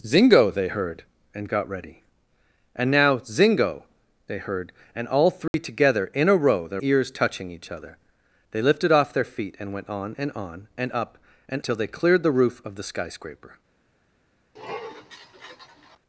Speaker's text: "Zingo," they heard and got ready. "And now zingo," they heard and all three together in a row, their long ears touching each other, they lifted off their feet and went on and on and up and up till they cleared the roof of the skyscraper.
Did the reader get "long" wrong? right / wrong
wrong